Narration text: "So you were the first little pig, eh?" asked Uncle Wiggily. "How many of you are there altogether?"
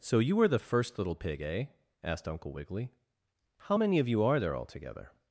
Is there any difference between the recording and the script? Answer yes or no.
no